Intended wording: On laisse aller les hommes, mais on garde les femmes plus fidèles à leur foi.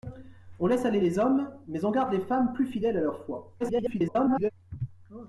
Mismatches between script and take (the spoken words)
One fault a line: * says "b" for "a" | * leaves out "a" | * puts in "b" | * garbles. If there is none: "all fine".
* garbles